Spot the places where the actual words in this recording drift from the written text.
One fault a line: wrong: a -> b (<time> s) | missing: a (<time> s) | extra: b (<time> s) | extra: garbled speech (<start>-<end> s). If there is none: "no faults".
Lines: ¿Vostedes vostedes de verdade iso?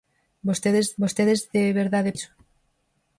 no faults